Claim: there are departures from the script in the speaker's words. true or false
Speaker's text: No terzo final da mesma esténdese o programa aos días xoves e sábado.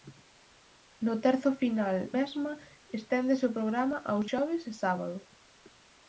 true